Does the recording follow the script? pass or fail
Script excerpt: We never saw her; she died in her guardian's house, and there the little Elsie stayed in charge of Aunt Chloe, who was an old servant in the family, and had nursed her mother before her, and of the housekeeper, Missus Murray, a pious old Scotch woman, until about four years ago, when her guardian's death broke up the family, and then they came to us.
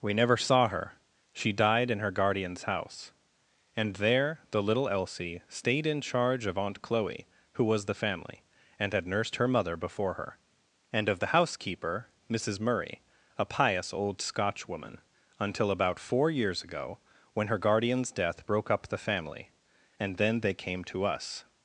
fail